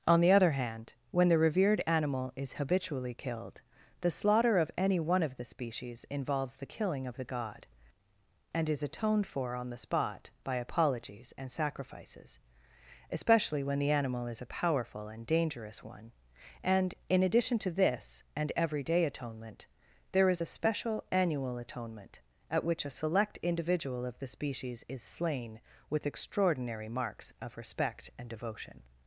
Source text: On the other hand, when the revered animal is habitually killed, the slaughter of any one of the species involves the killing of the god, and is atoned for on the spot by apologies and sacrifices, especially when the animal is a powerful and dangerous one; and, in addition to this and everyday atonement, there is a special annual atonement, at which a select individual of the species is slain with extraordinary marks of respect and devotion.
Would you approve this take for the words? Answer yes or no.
yes